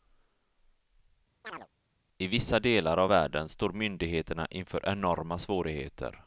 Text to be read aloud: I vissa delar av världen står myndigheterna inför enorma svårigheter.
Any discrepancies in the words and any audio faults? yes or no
yes